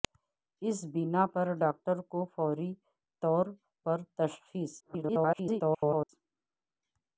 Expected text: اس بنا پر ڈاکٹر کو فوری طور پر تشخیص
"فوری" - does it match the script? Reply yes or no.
yes